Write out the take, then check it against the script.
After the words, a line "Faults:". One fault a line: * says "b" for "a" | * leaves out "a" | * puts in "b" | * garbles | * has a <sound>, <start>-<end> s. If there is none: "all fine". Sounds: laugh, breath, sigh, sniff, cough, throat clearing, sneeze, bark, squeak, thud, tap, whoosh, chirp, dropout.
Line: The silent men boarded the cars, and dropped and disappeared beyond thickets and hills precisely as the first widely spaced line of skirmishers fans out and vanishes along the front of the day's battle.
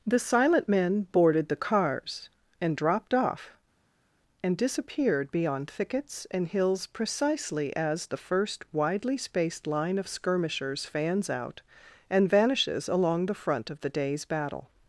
The silent men boarded the cars, and dropped off, and disappeared beyond thickets and hills precisely as the first widely spaced line of skirmishers fans out and vanishes along the front of the day's battle.
Faults:
* puts in "off"